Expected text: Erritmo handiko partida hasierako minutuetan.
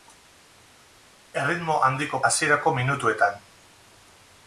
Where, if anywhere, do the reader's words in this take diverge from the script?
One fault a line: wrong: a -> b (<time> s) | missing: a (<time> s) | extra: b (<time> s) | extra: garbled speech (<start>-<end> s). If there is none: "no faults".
missing: partida (2.2 s)